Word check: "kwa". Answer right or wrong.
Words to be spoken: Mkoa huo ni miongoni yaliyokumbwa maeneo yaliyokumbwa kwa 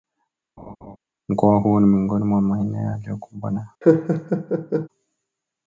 wrong